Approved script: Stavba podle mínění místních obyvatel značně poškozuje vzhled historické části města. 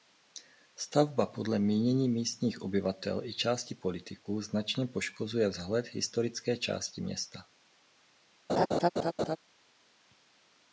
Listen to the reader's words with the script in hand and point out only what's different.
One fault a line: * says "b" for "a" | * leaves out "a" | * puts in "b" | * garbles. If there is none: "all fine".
* puts in "i části politiků"